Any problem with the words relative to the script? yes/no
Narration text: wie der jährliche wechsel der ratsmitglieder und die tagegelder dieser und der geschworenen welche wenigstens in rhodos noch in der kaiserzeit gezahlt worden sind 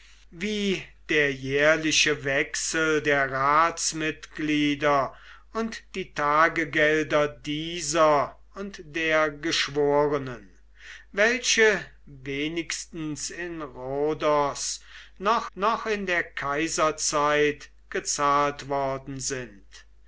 yes